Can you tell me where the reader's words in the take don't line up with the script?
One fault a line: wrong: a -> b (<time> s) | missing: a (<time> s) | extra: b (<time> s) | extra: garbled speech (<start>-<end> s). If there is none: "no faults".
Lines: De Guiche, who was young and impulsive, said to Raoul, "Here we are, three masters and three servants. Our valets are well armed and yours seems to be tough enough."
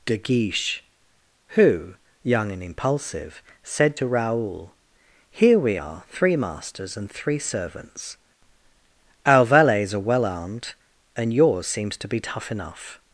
missing: was (1.9 s)